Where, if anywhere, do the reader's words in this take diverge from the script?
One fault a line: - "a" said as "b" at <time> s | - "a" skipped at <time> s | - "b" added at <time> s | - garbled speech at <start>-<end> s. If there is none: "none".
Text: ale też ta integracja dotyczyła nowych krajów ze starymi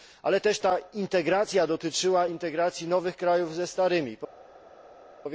- "integracji" added at 2.3 s